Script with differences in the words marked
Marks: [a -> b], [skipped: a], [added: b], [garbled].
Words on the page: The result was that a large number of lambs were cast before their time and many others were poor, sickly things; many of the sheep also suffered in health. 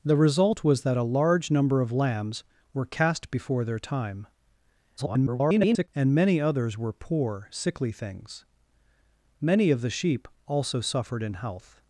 The result was that a large number of lambs were cast before their time [garbled] and many others were poor, sickly things; many of the sheep also suffered in health.